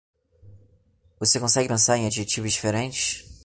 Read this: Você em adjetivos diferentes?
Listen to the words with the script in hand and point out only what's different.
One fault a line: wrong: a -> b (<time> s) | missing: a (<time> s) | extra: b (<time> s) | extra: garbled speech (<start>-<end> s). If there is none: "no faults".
extra: consegue pensar (1.4 s)